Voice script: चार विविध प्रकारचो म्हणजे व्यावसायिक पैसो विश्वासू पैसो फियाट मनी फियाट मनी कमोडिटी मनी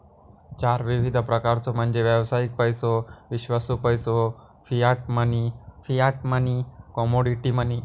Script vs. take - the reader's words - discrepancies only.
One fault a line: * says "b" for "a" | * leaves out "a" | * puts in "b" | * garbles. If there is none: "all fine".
all fine